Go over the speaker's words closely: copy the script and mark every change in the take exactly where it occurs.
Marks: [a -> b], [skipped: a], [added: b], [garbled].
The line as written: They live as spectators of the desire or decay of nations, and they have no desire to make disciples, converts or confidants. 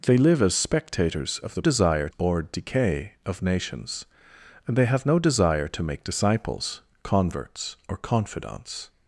They live as spectators of the desire or decay of nations, and they have no desire to make disciples, converts or confidants.